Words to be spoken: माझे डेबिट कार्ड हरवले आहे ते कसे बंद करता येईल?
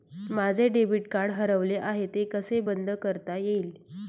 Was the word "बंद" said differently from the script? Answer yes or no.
no